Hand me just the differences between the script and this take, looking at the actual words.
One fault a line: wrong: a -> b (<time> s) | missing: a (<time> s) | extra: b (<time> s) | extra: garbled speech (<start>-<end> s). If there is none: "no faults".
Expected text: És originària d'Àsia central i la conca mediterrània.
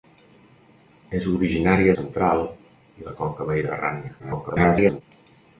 missing: d'Àsia (1.9 s)
extra: garbled speech (4.2-5.0 s)